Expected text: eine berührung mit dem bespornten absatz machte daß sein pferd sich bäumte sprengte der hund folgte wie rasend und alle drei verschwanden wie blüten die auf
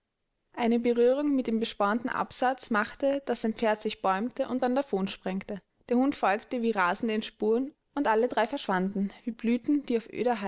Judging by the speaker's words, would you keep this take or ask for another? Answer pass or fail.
fail